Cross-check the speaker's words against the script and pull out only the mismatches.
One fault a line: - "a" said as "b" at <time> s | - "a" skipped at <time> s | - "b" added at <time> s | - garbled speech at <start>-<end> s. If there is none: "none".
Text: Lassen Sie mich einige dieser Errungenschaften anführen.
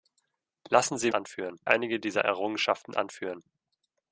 - "mich" said as "anführen" at 1.1 s